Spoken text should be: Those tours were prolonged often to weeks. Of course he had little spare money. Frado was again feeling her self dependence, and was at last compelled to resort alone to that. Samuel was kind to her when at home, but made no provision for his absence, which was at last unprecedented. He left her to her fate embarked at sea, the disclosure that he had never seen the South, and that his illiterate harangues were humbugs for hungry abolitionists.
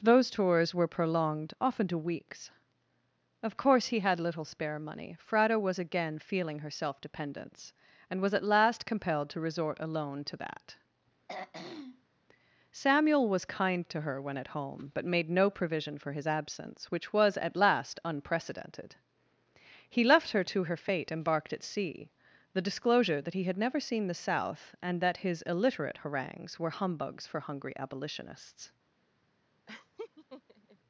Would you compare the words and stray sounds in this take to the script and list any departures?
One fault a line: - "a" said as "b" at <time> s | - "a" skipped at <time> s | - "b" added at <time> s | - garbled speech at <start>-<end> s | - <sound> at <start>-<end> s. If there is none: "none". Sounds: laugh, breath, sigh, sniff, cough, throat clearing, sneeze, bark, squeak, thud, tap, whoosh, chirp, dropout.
- throat clearing at 11.3-12.2 s
- laugh at 29.7-30.8 s